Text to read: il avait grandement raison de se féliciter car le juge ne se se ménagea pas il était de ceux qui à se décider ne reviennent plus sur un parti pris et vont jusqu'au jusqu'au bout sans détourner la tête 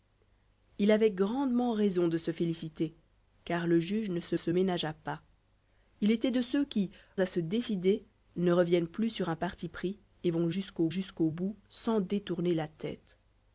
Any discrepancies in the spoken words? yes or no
no